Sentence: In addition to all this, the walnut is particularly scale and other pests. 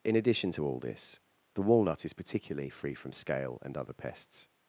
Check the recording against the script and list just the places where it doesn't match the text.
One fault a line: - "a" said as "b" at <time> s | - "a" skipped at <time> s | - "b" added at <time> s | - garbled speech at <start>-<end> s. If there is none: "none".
- "free from" added at 2.7 s